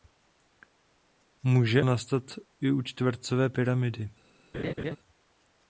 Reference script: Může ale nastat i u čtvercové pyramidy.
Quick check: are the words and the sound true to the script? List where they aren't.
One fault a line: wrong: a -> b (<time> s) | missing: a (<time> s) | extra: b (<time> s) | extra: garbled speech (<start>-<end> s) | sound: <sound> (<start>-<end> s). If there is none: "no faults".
missing: ale (1.9 s)
sound: laugh (4.5-5.0 s)